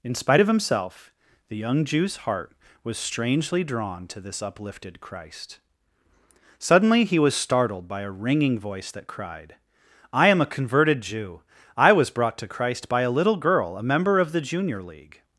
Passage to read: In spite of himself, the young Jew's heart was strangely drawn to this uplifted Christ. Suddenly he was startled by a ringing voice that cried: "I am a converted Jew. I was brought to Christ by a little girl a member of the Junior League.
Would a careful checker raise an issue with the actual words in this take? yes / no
no